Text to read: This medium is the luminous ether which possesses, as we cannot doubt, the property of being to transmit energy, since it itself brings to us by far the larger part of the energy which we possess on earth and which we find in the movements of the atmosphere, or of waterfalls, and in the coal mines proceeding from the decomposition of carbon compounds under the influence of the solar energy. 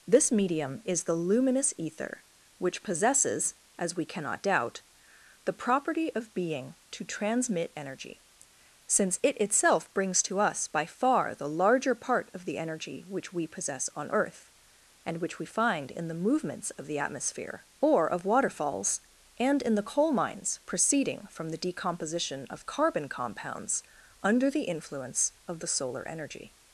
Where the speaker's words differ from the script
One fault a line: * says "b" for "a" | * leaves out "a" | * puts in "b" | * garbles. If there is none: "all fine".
all fine